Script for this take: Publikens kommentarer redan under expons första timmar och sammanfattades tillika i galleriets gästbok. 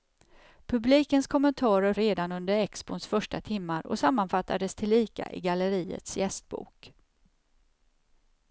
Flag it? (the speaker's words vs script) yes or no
no